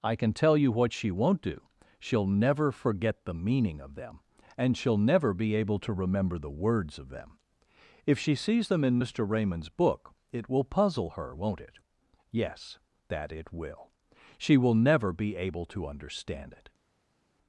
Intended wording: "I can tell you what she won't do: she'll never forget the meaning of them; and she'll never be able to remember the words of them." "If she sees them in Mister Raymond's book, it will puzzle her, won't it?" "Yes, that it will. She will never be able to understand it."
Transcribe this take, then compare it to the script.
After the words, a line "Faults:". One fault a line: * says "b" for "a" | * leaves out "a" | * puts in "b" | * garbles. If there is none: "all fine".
"I can tell you what she won't do: she'll never forget the meaning of them; and she'll never be able to remember the words of them." "If she sees them in Mister Raymond's book, it will puzzle her, won't it?" "Yes, that it will. She will never be able to understand it."
Faults:
all fine